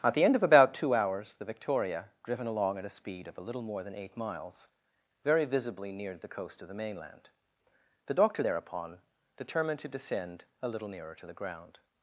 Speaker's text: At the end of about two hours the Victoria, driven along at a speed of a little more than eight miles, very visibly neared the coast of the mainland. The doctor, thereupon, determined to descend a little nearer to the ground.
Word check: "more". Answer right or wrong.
right